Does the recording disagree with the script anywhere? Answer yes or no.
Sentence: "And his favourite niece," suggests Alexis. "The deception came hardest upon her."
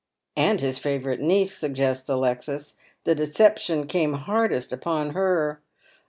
no